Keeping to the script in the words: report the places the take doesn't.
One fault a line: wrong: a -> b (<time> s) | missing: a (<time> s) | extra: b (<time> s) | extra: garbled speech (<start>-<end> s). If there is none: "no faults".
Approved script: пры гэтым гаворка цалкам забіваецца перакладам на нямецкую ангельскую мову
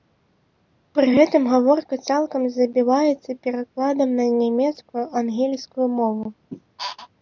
no faults